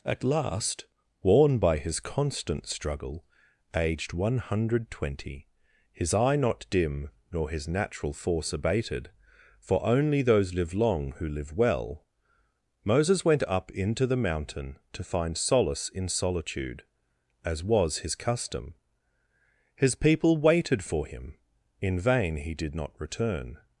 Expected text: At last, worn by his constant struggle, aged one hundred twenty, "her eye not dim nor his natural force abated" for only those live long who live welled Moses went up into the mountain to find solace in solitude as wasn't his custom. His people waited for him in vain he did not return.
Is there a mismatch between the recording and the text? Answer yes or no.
yes